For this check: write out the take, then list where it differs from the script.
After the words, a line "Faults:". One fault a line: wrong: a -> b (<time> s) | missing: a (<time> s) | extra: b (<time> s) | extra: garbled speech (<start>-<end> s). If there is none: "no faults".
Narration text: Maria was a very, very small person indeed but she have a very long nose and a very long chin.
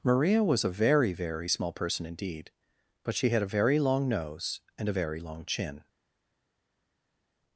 Maria was a very, very small person indeed but she had a very long nose and a very long chin.
Faults:
wrong: have -> had (3.3 s)